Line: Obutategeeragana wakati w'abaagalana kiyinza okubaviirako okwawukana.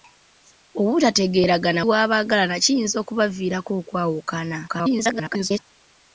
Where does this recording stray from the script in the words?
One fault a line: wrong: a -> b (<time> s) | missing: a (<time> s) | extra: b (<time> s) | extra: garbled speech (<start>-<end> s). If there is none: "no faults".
missing: wakati (1.8 s)
extra: garbled speech (4.7-5.6 s)